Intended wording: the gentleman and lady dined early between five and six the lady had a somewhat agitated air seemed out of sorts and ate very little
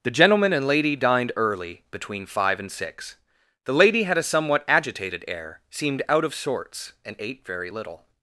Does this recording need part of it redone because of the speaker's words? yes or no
no